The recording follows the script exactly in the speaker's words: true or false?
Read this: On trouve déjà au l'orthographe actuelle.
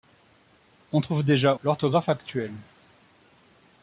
false